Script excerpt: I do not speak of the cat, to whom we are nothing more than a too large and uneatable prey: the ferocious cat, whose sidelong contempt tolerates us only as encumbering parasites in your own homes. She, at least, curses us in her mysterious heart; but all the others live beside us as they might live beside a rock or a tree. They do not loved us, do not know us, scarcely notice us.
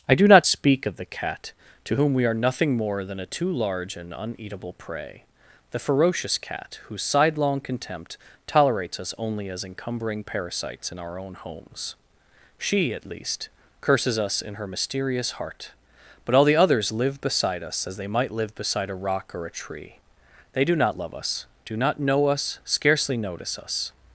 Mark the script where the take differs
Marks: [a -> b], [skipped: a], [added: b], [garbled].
I do not speak of the cat, to whom we are nothing more than a too large and uneatable prey: the ferocious cat, whose sidelong contempt tolerates us only as encumbering parasites in [your -> our] own homes. She, at least, curses us in her mysterious heart; but all the others live beside us as they might live beside a rock or a tree. They do not [loved -> love] us, do not know us, scarcely notice us.